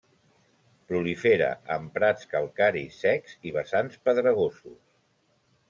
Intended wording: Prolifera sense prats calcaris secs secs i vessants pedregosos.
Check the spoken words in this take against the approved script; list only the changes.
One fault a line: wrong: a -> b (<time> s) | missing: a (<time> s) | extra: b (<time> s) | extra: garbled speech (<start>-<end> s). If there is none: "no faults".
wrong: sense -> en (1.8 s)
missing: secs (3.4 s)